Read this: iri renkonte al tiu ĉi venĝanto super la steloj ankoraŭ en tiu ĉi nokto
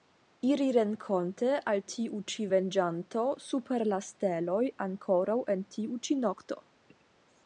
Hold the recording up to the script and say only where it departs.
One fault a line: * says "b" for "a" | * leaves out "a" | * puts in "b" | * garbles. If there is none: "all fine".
all fine